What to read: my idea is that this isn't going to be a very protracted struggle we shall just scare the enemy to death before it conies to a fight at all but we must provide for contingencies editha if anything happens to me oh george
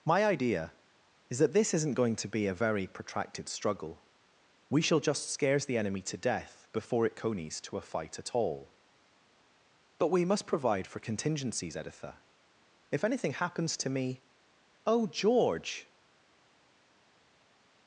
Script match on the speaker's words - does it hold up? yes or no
no